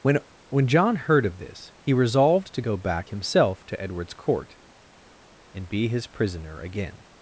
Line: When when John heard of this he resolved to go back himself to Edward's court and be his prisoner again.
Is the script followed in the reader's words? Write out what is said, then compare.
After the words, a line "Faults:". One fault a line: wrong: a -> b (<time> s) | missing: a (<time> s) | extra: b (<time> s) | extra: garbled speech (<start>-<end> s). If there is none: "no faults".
When when John heard of this he resolved to go back himself to Edward's court and be his prisoner again.
Faults:
no faults